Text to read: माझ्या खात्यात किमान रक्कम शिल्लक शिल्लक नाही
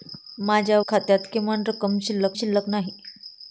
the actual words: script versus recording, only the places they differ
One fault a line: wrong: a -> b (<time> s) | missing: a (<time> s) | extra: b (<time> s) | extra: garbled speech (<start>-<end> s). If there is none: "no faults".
no faults